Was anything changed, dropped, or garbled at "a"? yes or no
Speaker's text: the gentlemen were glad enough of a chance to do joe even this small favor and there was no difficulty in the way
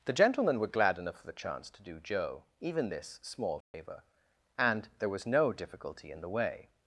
yes